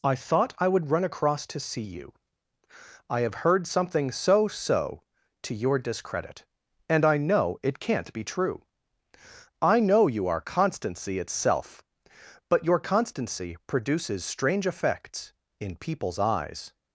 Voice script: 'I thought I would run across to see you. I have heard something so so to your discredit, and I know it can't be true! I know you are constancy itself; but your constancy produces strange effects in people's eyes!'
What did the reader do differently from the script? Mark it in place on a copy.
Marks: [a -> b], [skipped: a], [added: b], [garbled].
'I thought I would run across to see you. I have heard something so so to your discredit, and I know it can't be true! I know you are constancy itself; but your constancy produces strange effects in people's eyes!'